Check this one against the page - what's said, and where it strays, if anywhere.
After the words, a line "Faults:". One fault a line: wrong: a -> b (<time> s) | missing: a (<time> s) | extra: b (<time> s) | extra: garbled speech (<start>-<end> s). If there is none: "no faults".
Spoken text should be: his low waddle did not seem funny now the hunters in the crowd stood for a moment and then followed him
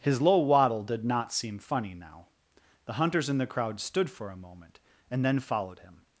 his low waddle did not seem funny now the hunters in the crowd stood for a moment and then followed him
Faults:
no faults